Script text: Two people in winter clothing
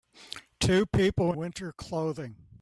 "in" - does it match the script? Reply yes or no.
no